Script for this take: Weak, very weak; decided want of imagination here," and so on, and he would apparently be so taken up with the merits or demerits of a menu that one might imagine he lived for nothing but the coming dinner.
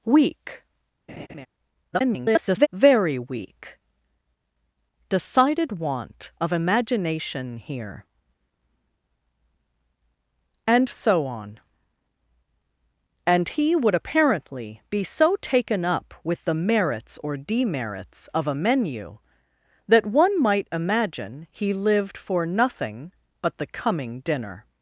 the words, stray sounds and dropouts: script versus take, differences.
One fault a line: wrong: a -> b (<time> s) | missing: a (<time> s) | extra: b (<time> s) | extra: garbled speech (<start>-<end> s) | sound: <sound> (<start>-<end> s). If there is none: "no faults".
sound: laugh (1.1-1.5 s)
extra: garbled speech (1.9-2.7 s)